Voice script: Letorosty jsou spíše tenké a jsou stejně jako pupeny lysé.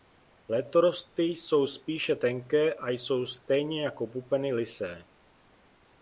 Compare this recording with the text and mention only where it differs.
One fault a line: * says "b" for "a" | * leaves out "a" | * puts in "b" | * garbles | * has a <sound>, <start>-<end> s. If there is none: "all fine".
all fine